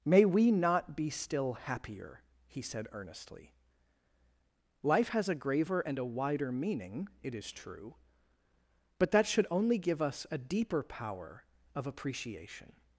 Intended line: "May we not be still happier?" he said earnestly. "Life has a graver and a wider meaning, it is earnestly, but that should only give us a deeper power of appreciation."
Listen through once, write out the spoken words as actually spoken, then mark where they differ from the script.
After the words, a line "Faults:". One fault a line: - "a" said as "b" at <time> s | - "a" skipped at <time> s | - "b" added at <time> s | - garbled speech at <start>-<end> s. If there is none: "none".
"May we not be still happier?" he said earnestly. "Life has a graver and a wider meaning, it is true, but that should only give us a deeper power of appreciation."
Faults:
- "earnestly" said as "true" at 7.5 s